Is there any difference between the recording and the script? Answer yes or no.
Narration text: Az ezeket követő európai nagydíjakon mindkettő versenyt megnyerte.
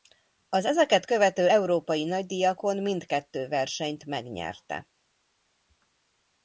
no